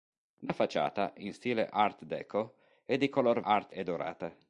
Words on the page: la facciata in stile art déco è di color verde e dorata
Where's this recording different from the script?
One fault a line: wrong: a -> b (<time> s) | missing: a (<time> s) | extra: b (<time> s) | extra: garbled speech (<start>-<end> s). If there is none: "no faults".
wrong: verde -> art (3.4 s)